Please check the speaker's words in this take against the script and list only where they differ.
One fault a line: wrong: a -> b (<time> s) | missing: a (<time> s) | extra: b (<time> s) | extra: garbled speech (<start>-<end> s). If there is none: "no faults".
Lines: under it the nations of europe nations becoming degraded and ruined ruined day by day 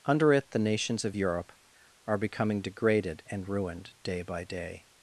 wrong: nations -> are (2.1 s)
missing: ruined (3.9 s)